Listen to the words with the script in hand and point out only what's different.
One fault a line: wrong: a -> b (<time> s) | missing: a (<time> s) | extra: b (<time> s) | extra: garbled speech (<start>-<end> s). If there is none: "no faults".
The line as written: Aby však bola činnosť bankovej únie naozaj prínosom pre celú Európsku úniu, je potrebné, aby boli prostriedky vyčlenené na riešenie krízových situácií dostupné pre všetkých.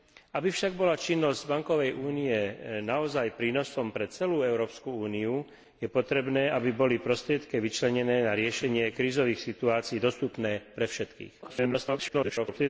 extra: garbled speech (11.4-12.7 s)